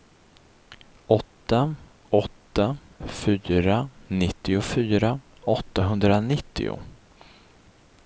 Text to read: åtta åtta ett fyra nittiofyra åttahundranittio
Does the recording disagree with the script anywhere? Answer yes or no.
yes